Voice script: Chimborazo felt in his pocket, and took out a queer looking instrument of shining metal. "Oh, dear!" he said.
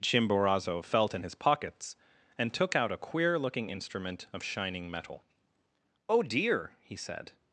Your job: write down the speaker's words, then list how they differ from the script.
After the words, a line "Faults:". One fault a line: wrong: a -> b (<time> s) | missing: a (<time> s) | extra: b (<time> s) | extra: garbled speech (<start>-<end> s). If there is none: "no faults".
Chimborazo felt in his pockets, and took out a queer looking instrument of shining metal. "Oh, dear!" he said.
Faults:
wrong: pocket -> pockets (1.3 s)